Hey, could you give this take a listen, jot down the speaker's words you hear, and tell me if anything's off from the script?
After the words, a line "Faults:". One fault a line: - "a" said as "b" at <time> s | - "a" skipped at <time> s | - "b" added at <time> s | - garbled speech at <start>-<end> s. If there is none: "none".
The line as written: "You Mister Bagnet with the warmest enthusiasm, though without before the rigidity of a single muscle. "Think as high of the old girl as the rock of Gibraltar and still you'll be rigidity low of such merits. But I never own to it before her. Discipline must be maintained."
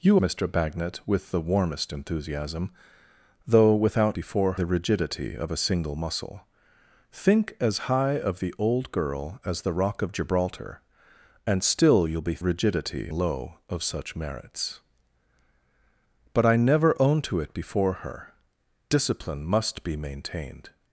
"You Mister Bagnet with the warmest enthusiasm, though without before the rigidity of a single muscle. "Think as high of the old girl as the rock of Gibraltar and still you'll be rigidity low of such merits. But I never own to it before her. Discipline must be maintained."
Faults:
none